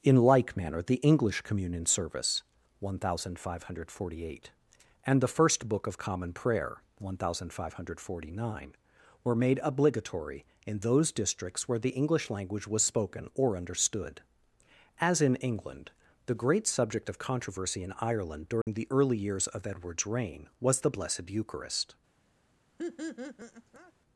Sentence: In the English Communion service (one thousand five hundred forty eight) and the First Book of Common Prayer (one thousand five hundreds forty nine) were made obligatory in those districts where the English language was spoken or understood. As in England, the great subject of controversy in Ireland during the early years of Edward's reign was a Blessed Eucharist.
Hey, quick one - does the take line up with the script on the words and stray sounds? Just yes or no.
no